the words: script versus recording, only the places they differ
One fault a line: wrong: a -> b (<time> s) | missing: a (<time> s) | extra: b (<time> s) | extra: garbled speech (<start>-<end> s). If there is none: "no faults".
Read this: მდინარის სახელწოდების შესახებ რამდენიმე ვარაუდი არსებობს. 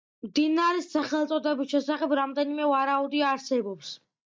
no faults